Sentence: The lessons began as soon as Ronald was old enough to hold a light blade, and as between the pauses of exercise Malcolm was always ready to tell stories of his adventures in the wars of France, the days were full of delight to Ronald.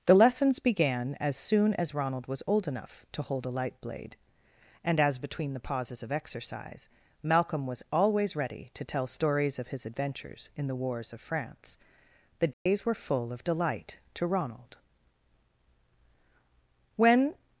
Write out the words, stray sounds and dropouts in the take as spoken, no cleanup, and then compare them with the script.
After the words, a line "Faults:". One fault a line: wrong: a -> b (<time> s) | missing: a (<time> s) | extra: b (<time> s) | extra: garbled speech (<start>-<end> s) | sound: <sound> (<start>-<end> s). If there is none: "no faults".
The lessons began as soon as Ronald was old enough to hold a light blade, and as between the pauses of exercise Malcolm was always ready to tell stories of his adventures in the wars of France, the days were full of delight to Ronald. When
Faults:
sound: dropout (12.5-12.7 s)
extra: When (16.9 s)